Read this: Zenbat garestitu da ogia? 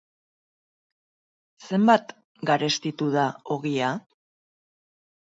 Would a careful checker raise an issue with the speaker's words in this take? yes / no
no